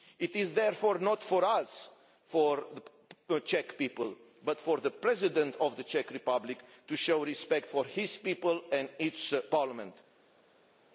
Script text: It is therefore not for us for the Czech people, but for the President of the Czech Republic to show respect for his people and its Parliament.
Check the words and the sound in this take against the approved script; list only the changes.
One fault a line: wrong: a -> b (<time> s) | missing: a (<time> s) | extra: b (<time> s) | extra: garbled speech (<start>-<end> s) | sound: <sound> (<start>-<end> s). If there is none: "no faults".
no faults